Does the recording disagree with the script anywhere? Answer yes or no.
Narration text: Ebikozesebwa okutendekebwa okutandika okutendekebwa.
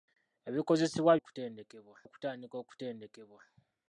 no